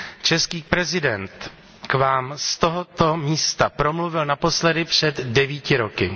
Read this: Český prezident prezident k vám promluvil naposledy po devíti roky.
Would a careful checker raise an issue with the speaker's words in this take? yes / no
yes